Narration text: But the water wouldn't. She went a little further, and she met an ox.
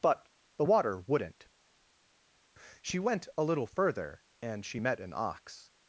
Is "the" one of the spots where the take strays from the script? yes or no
no